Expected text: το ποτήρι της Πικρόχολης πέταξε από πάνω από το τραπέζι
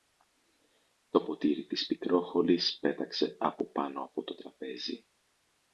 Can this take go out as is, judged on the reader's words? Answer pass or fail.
pass